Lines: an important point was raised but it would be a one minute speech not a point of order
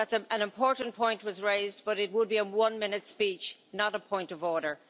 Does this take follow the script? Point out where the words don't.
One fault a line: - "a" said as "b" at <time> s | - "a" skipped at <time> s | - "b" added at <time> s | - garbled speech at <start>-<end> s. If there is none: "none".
none